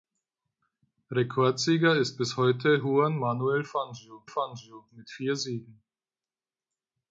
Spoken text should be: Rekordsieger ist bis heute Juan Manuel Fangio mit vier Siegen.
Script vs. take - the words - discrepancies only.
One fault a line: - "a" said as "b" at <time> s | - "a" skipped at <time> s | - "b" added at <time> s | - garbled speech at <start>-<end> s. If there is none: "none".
- "Fangio" added at 4.3 s